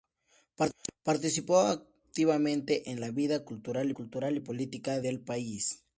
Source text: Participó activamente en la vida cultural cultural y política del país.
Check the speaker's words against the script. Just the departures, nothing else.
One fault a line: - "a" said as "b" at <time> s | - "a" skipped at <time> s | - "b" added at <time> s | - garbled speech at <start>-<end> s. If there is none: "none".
none